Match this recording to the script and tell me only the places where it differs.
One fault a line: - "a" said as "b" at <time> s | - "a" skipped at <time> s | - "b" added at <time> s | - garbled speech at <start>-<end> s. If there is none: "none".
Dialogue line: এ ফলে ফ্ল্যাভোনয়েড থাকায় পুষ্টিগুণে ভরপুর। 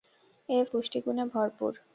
- "ফলে ফ্ল্যাভোনয়েড থাকায়" skipped at 0.6 s